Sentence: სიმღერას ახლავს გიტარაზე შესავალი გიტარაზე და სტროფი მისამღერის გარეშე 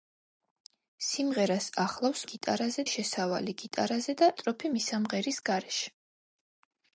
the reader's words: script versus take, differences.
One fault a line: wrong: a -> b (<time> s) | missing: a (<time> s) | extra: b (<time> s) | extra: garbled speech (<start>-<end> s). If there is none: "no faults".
no faults